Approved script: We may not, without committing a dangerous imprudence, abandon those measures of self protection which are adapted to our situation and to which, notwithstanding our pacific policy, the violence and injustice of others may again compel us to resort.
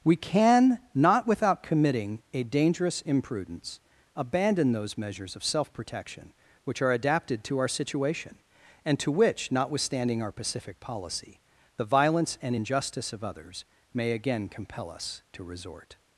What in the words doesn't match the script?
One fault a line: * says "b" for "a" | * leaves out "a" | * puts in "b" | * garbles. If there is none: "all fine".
* says "can" for "may"